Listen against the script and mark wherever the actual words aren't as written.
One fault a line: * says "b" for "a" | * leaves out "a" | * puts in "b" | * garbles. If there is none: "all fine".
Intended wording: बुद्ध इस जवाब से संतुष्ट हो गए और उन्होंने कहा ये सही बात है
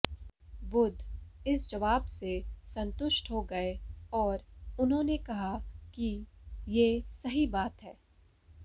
* puts in "कि"